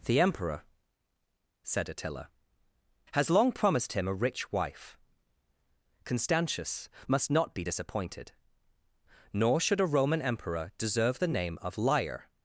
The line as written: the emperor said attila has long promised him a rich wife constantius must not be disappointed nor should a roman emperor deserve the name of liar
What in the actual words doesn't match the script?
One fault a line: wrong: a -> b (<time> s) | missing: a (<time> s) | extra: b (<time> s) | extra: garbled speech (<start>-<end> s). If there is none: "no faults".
no faults